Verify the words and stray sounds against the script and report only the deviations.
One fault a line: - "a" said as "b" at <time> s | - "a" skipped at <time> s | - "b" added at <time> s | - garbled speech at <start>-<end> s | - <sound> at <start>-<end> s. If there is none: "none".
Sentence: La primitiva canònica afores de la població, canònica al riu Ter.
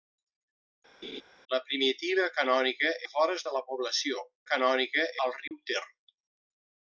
- laugh at 1.0-1.2 s
- dropout at 5.5-5.5 s